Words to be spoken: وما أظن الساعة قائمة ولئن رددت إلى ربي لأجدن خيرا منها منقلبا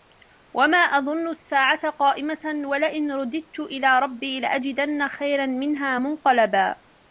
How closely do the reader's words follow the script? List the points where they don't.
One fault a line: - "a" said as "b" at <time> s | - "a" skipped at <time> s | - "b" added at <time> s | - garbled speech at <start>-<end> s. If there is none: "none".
none